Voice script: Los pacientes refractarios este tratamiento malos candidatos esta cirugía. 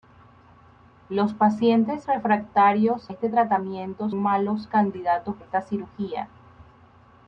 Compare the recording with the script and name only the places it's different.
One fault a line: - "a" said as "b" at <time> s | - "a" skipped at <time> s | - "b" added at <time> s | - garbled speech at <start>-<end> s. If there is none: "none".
none